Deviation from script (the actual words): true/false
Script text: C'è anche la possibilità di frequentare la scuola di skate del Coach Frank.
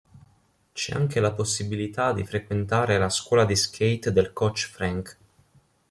false